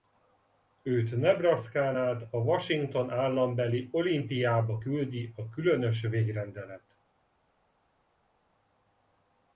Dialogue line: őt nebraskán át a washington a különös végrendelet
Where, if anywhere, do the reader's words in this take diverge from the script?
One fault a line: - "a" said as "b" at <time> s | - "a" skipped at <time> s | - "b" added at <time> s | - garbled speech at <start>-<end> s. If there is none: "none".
- "állambeli olympiába küldi" added at 3.1 s